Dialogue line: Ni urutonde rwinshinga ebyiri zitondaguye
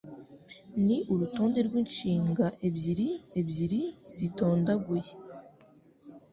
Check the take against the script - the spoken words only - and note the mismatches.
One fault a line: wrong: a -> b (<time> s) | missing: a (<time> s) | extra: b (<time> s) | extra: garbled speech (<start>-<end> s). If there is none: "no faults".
extra: ebyiri (3.4 s)